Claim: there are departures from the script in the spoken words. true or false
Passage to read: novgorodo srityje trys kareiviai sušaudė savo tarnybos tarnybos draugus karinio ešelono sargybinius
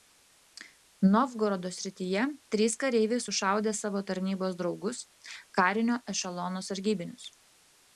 true